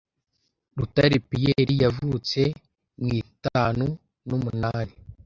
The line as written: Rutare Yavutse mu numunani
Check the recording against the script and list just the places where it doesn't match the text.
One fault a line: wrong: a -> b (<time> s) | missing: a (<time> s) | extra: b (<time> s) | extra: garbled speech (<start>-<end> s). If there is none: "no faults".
extra: Pierre (1.3 s)
extra: itanu (3.2 s)